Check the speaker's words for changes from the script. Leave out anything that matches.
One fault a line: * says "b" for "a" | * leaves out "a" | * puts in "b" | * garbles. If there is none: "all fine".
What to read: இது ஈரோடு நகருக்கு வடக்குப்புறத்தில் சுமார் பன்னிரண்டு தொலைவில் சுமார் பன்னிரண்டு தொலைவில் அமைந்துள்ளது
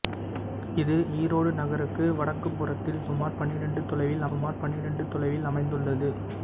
all fine